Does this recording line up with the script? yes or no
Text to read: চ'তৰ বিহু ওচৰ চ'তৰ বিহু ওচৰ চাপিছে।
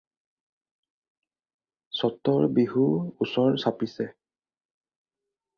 no